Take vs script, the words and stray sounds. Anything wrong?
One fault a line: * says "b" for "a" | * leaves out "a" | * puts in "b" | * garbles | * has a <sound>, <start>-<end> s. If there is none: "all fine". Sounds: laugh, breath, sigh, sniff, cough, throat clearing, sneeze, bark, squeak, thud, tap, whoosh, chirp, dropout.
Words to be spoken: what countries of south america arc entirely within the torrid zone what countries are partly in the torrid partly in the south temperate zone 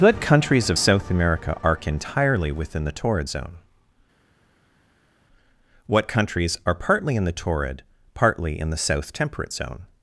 all fine